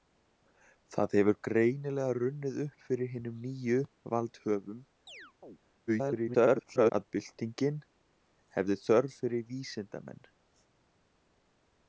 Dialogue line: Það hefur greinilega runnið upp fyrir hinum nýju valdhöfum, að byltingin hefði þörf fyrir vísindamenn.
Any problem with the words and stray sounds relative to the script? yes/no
yes